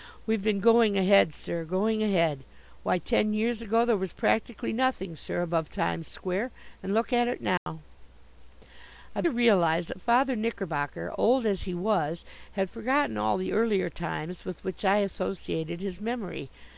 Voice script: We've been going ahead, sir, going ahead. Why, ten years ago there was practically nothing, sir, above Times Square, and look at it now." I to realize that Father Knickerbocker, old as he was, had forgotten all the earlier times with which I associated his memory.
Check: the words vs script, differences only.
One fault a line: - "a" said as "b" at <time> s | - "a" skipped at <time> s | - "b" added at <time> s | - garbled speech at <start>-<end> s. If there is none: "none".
none